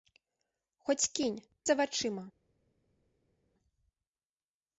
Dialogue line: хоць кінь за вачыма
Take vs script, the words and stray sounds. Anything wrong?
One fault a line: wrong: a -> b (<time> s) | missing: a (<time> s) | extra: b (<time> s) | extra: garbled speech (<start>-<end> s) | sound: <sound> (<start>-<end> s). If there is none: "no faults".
no faults